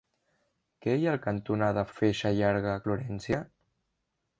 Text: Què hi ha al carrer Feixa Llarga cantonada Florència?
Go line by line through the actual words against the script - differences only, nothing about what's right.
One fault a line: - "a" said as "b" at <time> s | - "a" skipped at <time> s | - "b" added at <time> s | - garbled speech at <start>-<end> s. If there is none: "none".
- "carrer" said as "cantonada" at 1.3 s
- "cantonada" skipped at 2.8 s